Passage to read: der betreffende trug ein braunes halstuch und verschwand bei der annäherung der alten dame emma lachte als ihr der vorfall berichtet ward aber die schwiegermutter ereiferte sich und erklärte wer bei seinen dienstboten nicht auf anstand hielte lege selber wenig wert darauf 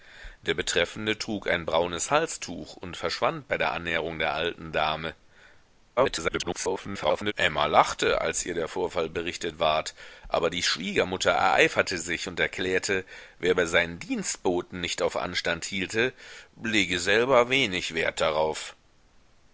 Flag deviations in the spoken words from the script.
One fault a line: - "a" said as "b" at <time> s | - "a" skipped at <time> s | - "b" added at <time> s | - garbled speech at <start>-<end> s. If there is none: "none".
- garbled speech at 6.0-7.3 s